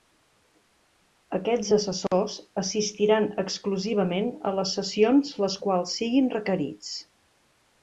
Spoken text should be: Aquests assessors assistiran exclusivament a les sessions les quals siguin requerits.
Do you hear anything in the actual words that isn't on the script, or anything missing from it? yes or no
no